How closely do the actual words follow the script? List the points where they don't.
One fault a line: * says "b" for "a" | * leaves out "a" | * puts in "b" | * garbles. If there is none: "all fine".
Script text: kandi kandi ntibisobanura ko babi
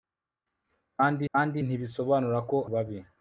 all fine